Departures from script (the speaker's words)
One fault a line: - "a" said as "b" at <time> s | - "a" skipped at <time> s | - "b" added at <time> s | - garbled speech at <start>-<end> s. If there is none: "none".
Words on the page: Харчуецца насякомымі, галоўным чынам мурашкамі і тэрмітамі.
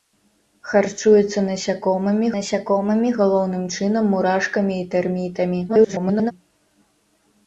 - "насякомымі" added at 2.3 s
- garbled speech at 5.7-6.3 s